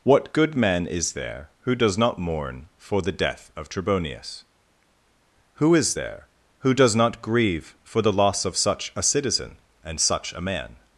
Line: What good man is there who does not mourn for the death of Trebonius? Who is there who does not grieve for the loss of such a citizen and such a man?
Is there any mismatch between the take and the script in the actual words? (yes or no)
no